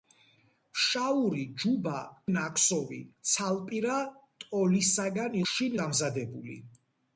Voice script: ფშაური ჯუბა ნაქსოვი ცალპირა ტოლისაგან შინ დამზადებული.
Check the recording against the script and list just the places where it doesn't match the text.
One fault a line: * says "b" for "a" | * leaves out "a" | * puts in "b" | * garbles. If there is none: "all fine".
all fine